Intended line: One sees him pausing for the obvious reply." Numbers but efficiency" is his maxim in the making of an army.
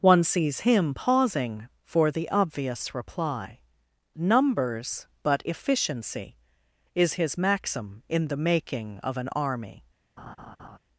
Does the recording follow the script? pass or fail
pass